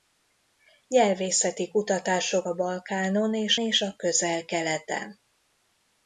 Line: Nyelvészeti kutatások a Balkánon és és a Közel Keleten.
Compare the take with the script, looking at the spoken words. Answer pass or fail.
pass